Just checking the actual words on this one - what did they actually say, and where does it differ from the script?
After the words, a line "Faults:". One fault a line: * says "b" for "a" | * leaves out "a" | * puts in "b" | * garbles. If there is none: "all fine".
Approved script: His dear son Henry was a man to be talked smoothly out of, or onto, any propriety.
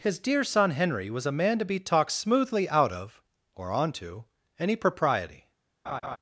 His dear son Henry was a man to be talked smoothly out of, or onto, any propriety.
Faults:
all fine